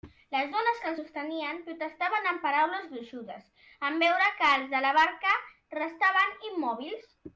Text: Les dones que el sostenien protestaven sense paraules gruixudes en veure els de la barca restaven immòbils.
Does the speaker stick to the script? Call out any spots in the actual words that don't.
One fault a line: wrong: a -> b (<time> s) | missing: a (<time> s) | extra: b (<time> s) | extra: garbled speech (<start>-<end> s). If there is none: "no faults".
wrong: sense -> amb (2.3 s)
extra: que (4.4 s)